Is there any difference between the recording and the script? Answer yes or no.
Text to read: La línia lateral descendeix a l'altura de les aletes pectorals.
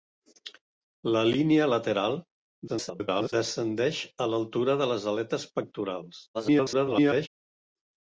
yes